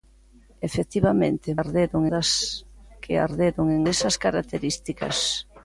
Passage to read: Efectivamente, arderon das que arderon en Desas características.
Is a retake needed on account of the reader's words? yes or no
no